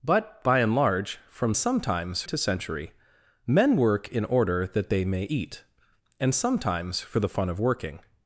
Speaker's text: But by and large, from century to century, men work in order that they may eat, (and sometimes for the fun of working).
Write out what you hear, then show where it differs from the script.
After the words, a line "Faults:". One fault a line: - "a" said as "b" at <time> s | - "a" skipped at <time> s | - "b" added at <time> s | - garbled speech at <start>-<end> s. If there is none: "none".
But by and large, from sometimes to century, men work in order that they may eat, (and sometimes for the fun of working).
Faults:
- "century" said as "sometimes" at 1.5 s